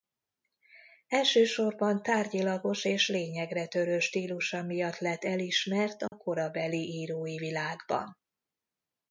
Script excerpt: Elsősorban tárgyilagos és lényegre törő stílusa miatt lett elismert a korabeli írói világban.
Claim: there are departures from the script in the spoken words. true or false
false